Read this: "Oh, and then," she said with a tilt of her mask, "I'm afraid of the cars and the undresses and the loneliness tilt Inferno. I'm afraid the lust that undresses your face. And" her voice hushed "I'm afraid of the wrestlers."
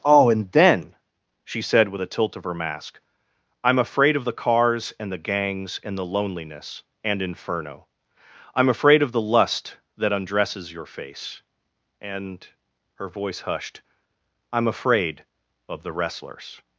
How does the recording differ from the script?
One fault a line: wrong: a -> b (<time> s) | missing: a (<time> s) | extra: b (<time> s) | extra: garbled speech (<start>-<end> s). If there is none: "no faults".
wrong: undresses -> gangs (5.2 s)
wrong: tilt -> and (7.0 s)
extra: of (9.0 s)